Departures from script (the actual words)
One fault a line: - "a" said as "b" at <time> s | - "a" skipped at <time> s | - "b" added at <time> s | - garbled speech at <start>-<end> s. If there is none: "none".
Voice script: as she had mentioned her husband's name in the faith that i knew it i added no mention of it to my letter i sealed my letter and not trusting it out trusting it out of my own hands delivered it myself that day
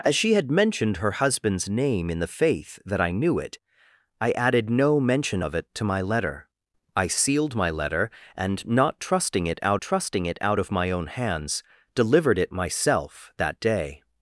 none